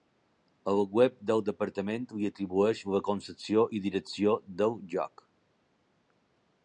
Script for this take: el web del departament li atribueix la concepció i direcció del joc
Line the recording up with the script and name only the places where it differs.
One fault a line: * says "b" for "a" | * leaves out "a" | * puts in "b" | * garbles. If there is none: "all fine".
all fine